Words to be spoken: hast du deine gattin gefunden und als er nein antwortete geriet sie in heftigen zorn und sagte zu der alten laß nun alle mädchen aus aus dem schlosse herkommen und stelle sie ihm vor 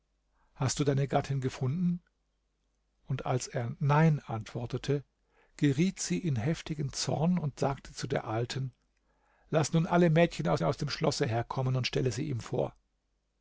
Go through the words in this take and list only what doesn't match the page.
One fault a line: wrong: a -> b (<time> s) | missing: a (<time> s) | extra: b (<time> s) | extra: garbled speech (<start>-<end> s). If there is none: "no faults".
no faults